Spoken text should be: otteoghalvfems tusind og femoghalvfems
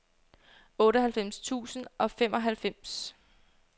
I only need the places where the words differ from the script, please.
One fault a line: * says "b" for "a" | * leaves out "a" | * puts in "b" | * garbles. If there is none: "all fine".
all fine